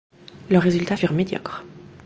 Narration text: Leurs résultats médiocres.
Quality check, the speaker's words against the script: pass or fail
fail